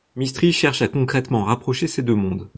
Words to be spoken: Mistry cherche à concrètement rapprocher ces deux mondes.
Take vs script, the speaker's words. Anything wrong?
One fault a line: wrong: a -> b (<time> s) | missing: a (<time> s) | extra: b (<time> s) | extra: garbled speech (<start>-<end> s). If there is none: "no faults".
no faults